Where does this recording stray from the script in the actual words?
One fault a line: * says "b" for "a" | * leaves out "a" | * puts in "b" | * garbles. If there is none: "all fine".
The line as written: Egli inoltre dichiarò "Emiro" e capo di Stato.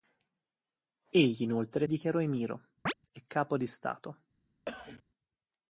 all fine